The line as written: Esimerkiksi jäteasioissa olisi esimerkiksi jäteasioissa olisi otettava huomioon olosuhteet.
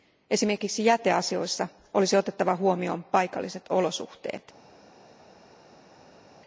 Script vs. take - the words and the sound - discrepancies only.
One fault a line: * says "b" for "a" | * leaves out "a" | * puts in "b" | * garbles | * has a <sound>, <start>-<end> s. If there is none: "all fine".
* leaves out "esimerkiksi jäteasioissa olisi"
* puts in "paikalliset"